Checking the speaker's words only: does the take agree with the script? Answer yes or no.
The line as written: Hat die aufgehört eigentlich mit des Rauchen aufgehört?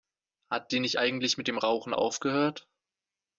no